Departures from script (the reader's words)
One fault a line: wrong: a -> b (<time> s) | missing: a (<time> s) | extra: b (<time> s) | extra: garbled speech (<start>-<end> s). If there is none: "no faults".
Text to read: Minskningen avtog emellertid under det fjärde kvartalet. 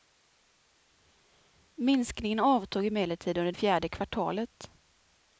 missing: det (3.5 s)